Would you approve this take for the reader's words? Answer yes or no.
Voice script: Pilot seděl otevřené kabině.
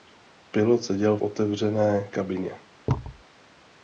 yes